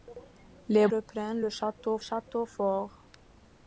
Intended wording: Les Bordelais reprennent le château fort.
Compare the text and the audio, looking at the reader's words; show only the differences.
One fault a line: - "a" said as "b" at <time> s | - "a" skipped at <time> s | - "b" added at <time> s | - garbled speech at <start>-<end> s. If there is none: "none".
- "Bordelais" skipped at 0.9 s
- "château" added at 2.0 s